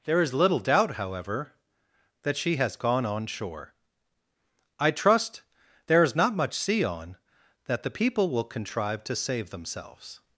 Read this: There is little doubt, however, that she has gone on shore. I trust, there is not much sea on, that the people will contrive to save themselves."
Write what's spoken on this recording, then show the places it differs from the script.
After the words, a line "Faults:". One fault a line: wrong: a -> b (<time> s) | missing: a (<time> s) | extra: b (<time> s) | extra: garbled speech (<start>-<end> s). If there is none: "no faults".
There is little doubt, however, that she has gone on shore. I trust, there is not much sea on, that the people will contrive to save themselves."
Faults:
no faults